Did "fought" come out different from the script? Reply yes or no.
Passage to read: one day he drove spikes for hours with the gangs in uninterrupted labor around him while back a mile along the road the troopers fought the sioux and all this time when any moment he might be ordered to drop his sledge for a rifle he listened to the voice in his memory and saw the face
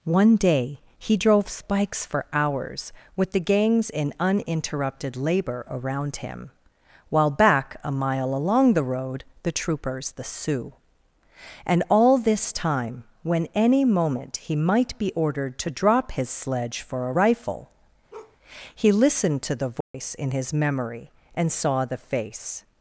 yes